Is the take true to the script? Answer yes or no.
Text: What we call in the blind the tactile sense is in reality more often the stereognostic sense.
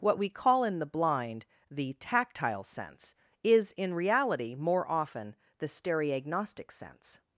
yes